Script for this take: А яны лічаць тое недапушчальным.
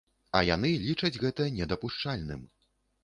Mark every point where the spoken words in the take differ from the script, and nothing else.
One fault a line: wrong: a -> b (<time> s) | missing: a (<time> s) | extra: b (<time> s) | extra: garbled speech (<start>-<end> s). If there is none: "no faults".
wrong: тое -> гэта (1.2 s)